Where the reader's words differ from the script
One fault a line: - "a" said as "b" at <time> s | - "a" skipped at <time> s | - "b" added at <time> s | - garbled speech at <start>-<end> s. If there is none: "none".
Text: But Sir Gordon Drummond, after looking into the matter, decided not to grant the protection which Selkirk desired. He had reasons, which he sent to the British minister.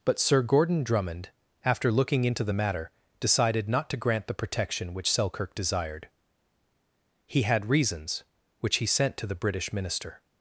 none